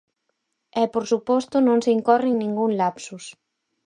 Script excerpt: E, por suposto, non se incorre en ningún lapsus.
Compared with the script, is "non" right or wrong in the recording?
right